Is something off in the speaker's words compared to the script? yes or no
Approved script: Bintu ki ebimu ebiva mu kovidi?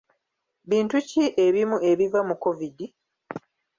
no